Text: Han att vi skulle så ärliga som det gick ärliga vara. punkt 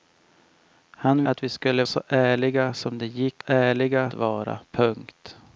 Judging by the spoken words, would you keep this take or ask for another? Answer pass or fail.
pass